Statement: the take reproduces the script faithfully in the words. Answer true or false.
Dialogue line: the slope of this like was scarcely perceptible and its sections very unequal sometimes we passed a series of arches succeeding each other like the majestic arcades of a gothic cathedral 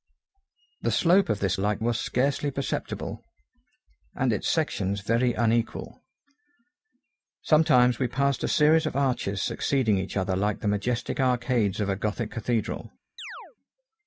true